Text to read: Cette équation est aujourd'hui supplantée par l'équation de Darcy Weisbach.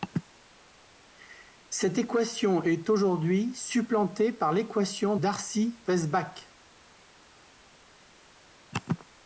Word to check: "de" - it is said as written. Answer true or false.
false